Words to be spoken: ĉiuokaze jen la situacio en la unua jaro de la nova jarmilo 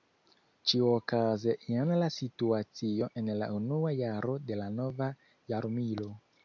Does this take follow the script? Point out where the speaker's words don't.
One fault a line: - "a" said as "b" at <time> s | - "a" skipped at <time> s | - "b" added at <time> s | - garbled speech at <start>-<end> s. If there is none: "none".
none